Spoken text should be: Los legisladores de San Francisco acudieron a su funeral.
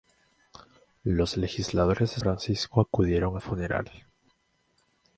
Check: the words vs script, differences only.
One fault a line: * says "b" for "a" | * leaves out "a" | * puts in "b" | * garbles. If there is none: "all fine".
* leaves out "San"
* leaves out "su"